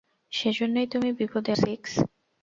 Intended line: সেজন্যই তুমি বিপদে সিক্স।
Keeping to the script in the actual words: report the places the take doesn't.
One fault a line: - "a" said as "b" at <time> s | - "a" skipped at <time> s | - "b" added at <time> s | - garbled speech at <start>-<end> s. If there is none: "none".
none